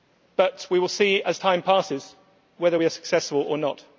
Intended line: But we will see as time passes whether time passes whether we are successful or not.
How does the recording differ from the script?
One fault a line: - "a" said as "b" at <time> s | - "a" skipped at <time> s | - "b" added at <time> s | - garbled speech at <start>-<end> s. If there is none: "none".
- "time passes whether" skipped at 2.8 s